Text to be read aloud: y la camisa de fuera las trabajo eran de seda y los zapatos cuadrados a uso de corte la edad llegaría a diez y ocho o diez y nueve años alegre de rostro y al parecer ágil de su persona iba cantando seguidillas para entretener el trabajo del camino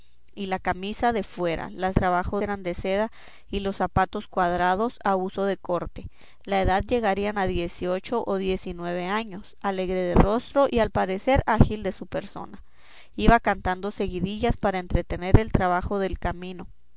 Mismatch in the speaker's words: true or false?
false